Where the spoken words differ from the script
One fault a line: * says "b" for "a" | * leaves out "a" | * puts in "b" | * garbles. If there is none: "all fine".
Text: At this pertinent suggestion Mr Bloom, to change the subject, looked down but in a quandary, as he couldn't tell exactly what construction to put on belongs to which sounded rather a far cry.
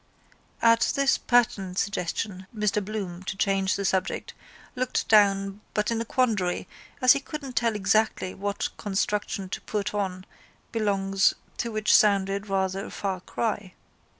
all fine